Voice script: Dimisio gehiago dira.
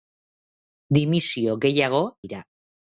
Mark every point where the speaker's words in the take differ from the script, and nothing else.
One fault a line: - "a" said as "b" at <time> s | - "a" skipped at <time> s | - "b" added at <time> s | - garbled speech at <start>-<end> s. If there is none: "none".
none